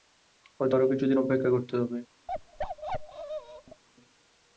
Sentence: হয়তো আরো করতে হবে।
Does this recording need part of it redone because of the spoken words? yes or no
yes